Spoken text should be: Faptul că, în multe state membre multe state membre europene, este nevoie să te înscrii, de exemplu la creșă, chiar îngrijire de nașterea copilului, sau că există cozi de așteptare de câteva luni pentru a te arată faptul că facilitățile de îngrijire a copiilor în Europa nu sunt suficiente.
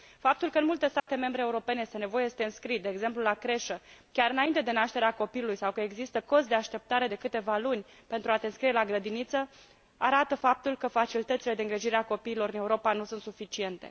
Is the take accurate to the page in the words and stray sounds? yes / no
no